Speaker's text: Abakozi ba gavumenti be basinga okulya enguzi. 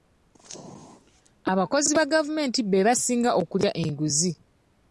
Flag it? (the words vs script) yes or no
no